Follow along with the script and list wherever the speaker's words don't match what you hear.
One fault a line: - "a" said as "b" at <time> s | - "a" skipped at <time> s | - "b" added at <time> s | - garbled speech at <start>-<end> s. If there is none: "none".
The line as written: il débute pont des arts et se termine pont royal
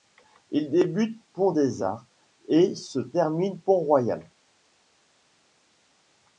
none